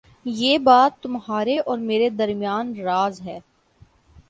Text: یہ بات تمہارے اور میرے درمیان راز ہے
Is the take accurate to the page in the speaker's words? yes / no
yes